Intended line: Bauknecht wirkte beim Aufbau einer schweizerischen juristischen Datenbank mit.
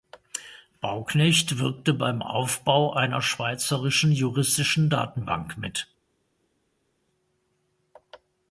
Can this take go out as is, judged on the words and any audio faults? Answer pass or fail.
pass